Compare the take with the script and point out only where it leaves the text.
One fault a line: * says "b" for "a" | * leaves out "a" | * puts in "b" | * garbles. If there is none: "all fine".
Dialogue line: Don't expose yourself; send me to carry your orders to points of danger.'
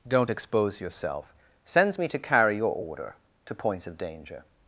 * says "sends" for "send"
* says "order" for "orders"